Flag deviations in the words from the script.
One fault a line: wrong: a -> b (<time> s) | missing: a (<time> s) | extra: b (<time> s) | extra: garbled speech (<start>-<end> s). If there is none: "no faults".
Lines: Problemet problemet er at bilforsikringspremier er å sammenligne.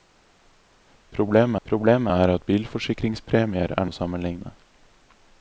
no faults